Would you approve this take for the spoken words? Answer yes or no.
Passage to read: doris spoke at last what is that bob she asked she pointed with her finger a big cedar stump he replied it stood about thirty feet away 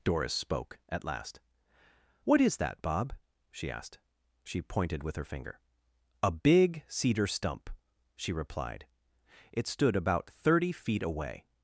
no